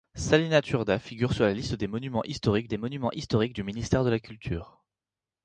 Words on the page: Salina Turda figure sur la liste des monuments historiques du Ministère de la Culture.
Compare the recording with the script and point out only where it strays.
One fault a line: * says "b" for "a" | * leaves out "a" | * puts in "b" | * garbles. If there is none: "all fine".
* puts in "des monuments historiques"